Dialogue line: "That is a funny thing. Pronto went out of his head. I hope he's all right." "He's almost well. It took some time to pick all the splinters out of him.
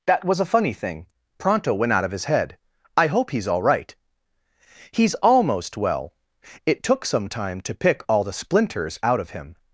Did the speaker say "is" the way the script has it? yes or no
no